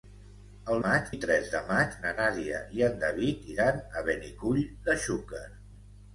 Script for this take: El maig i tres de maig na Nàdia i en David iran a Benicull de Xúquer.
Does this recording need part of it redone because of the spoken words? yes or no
no